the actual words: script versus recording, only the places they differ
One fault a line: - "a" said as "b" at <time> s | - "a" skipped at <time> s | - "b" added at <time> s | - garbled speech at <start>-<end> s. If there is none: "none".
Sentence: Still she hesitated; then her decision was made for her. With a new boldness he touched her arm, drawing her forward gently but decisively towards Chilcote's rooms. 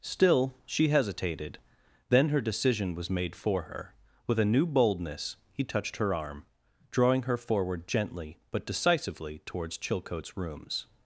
none